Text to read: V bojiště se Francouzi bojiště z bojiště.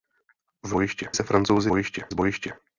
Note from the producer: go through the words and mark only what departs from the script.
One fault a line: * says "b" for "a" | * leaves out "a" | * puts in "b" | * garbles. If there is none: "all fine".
all fine